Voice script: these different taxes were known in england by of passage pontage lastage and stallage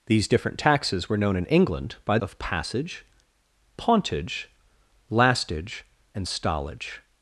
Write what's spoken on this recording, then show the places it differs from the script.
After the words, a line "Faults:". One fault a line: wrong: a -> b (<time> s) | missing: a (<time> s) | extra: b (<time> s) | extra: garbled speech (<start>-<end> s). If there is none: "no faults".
these different taxes were known in england by of passage pontage lastage and stallage
Faults:
no faults